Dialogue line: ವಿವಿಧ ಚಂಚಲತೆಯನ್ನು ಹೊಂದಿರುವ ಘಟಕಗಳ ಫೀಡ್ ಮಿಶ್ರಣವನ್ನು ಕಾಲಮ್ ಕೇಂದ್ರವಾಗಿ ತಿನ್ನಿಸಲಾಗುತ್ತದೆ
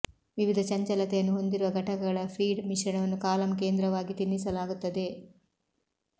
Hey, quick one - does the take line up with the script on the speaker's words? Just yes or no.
yes